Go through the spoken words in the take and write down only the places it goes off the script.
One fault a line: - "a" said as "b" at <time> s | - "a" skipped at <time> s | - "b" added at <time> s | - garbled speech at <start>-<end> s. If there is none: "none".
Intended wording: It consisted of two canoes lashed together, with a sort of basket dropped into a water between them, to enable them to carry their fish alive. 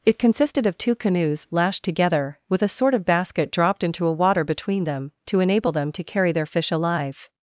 none